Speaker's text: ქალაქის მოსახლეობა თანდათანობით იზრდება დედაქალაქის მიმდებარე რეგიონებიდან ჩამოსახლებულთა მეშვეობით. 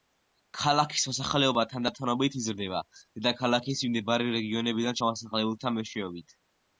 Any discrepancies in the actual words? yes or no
no